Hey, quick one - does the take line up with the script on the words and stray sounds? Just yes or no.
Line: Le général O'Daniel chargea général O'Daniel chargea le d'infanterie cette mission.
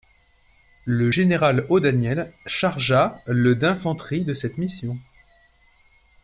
no